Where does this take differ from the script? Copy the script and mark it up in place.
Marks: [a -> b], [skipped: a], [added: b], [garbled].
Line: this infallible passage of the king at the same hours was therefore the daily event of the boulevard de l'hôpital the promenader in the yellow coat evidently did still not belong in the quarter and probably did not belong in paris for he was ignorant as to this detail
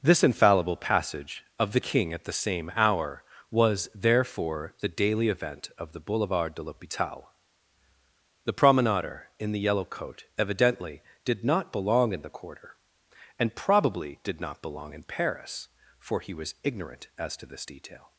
this infallible passage of the king at the same [hours -> hour] was therefore the daily event of the boulevard de l'hôpital the promenader in the yellow coat evidently did [skipped: still] not belong in the quarter and probably did not belong in paris for he was ignorant as to this detail